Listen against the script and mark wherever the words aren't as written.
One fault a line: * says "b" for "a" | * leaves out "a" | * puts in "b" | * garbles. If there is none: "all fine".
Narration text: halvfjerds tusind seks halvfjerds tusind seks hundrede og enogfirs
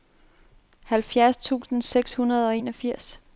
* leaves out "halvfjerds tusind seks"